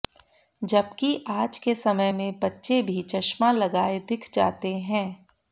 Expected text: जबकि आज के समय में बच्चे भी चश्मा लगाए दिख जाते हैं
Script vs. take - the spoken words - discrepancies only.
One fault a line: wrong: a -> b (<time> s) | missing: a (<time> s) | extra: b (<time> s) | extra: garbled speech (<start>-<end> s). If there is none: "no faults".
no faults